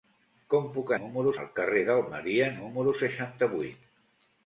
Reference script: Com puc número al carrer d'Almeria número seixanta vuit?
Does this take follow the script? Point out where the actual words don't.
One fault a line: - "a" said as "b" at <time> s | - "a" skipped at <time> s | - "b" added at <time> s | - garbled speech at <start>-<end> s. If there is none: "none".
none